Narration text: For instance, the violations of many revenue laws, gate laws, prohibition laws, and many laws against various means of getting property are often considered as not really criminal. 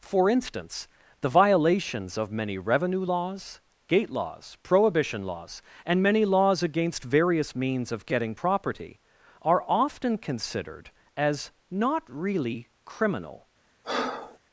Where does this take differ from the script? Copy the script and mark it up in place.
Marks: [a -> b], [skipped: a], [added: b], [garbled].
For instance, the violations of many revenue laws, gate laws, prohibition laws, and many laws against various means of getting property are often considered as not really criminal.